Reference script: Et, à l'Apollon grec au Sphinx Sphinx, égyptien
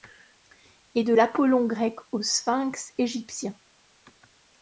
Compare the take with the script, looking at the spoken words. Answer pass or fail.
fail